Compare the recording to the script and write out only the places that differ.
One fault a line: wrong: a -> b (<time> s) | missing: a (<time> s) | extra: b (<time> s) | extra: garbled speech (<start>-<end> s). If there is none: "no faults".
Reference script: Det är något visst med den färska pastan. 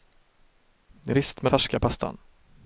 missing: något (1.1 s)
missing: den (1.5 s)